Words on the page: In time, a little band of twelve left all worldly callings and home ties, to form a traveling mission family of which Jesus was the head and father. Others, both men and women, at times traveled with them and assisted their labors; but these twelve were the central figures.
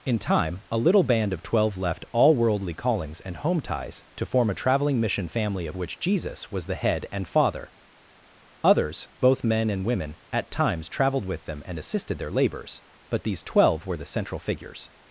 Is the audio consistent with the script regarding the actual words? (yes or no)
yes